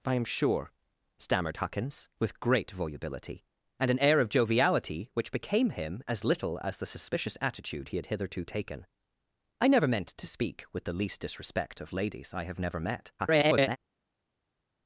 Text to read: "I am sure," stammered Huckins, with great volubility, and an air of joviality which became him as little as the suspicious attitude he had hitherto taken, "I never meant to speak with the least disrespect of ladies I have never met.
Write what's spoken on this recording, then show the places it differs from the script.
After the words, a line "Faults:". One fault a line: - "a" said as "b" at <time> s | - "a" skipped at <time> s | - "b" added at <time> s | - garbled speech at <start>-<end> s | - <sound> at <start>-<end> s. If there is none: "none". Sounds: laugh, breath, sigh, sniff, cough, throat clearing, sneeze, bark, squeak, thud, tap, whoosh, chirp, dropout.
"I am sure," stammered Huckins, with great volubility, and an air of joviality which became him as little as the suspicious attitude he had hitherto taken, "I never meant to speak with the least disrespect of ladies I have never met. [garbled]
Faults:
- garbled speech at 13.2-13.8 s